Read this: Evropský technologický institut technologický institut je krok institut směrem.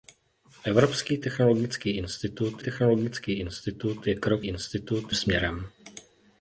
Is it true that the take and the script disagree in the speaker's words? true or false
false